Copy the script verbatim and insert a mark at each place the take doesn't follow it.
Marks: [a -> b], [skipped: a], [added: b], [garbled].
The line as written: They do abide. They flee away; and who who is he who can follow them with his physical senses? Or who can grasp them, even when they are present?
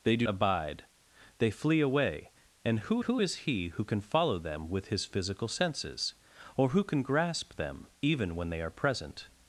They do abide. They flee away; and who who is he who can follow them with his physical senses? Or who can grasp them, even when they are present?